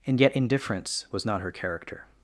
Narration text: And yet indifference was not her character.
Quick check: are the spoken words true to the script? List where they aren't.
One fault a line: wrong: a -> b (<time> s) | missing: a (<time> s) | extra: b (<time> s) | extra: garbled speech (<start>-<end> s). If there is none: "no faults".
no faults